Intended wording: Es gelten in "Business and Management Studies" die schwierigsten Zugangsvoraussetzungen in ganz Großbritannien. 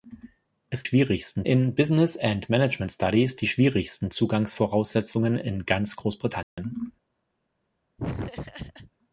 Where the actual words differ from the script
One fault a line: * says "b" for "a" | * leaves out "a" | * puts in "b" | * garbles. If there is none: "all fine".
* says "schwierigsten" for "gelten"